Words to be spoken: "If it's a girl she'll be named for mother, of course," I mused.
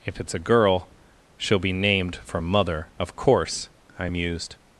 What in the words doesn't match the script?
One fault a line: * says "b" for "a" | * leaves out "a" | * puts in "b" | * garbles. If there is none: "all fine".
all fine